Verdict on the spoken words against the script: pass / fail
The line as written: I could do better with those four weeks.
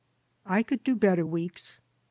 fail